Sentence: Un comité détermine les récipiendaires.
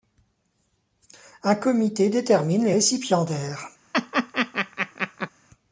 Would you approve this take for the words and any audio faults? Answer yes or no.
no